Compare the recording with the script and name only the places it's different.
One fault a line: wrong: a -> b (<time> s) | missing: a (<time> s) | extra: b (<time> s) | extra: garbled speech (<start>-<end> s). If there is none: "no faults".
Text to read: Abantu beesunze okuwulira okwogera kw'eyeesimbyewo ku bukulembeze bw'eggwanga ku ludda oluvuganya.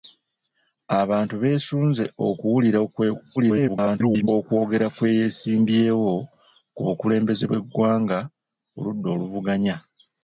extra: garbled speech (3.4-4.3 s)